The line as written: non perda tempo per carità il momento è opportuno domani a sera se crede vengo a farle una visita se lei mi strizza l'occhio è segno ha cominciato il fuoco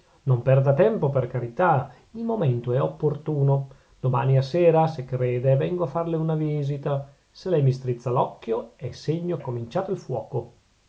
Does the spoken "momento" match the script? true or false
true